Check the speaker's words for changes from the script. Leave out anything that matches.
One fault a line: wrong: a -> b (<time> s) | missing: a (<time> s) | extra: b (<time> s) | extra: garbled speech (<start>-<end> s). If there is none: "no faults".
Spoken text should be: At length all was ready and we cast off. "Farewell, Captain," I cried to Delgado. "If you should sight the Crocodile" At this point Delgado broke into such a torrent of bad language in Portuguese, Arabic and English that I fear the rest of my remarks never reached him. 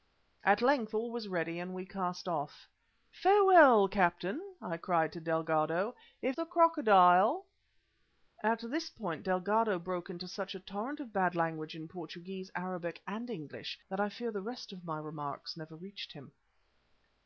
missing: you should sight (6.4 s)